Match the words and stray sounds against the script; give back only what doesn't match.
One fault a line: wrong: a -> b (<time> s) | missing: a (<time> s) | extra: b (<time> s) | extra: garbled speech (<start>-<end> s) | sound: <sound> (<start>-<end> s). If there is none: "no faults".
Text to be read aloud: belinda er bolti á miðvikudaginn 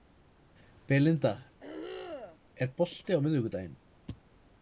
sound: throat clearing (1.6-2.4 s)